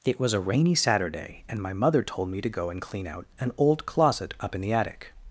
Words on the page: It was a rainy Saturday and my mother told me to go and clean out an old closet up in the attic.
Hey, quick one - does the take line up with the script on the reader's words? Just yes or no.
yes